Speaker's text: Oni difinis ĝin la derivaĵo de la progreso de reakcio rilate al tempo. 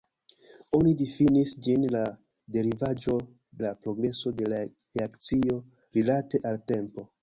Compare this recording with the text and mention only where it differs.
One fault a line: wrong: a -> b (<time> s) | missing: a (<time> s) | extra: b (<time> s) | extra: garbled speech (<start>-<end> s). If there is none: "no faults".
missing: de (3.2 s)